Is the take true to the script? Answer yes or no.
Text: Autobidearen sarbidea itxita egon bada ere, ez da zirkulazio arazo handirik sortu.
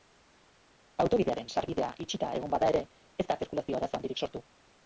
yes